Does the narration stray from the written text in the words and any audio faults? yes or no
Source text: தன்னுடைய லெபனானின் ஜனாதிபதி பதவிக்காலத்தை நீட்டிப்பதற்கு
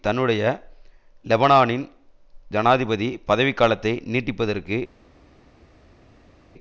no